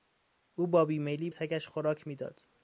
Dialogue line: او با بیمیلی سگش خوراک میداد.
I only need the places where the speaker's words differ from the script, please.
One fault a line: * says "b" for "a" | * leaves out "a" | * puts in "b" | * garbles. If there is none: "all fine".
all fine